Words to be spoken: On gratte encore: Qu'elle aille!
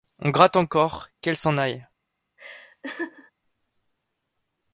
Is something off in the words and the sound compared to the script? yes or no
yes